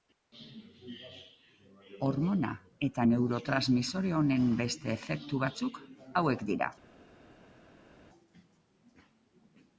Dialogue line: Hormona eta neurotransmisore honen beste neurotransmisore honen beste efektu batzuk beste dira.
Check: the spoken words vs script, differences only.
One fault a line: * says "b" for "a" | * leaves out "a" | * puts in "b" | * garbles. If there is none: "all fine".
* leaves out "neurotransmisore honen beste"
* says "hauek" for "beste"